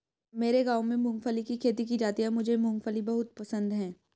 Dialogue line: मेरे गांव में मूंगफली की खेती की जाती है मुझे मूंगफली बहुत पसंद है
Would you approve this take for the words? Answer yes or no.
yes